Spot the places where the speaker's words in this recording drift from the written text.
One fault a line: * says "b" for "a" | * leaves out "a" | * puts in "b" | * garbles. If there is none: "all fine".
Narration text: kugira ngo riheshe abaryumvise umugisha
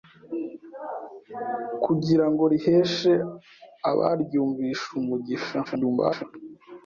* garbles